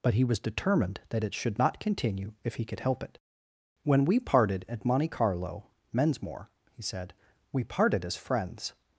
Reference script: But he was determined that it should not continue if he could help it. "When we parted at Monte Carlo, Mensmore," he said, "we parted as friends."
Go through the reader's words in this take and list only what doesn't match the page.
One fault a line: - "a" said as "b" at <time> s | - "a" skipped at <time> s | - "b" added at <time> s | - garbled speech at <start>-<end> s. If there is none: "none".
none